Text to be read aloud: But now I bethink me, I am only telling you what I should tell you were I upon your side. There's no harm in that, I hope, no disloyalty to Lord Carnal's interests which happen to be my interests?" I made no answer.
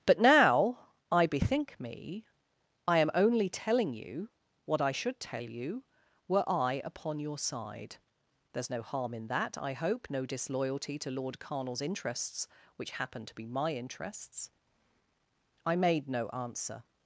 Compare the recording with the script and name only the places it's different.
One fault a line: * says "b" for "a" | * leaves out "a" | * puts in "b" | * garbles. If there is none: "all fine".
all fine